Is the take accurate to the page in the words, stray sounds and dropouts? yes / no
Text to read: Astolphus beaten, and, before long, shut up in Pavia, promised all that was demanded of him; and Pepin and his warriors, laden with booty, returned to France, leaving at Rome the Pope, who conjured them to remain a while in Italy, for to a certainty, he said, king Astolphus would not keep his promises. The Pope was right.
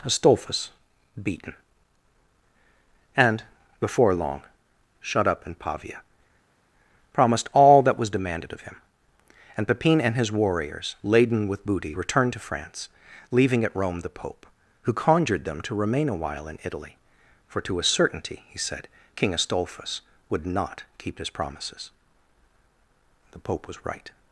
yes